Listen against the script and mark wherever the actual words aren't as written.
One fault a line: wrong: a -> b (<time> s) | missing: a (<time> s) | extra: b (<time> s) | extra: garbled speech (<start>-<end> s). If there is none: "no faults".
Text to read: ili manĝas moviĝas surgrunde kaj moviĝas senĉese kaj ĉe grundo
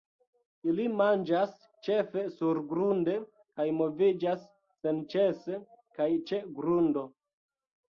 wrong: moviĝas -> ĉefe (1.9 s)